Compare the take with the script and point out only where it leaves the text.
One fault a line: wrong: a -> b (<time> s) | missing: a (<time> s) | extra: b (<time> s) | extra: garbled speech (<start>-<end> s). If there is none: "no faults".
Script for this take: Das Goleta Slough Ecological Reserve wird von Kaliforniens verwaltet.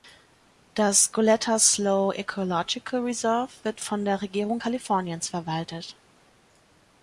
extra: der Regierung (4.0 s)